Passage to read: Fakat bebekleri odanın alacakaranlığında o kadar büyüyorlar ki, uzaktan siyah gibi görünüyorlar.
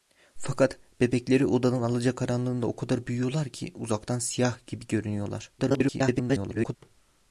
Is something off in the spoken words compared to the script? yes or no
yes